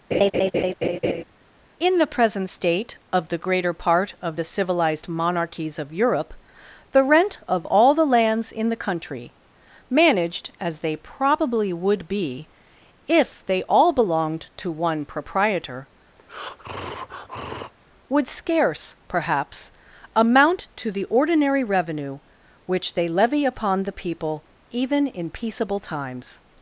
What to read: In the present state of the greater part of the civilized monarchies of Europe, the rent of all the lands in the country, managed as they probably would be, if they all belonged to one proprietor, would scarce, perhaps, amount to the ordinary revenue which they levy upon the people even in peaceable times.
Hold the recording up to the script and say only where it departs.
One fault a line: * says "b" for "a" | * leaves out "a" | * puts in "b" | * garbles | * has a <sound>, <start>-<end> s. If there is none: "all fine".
* has a laugh, 0.1-1.2 s
* has a breath, 16.2-17.7 s